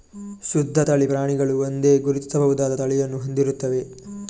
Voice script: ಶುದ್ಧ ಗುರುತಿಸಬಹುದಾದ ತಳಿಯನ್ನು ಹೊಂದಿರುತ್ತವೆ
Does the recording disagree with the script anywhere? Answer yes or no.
yes